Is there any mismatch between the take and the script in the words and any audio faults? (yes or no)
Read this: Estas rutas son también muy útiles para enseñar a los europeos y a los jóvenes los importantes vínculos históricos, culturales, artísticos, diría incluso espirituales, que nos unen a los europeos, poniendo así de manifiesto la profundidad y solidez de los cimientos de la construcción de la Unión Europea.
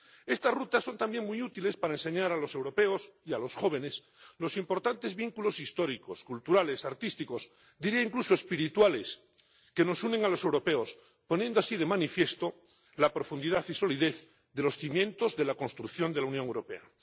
no